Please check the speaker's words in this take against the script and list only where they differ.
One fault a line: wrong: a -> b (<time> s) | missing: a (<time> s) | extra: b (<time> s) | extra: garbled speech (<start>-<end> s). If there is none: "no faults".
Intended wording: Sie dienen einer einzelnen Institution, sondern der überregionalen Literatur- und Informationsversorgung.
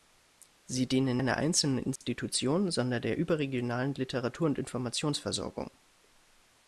no faults